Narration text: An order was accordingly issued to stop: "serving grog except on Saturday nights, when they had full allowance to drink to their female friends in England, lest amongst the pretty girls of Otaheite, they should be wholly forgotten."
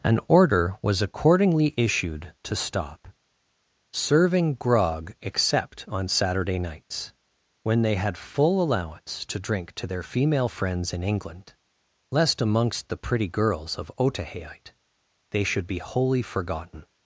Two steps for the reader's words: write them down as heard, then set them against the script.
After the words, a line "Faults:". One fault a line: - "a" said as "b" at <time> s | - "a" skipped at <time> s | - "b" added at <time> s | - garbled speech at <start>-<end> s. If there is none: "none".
An order was accordingly issued to stop: "serving grog except on Saturday nights, when they had full allowance to drink to their female friends in England, lest amongst the pretty girls of Otaheite, they should be wholly forgotten."
Faults:
none